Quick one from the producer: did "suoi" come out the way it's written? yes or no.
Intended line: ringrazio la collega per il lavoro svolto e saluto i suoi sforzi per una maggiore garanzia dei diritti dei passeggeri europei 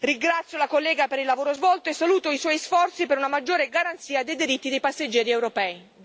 yes